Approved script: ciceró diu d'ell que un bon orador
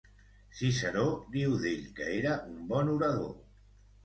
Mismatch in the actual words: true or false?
true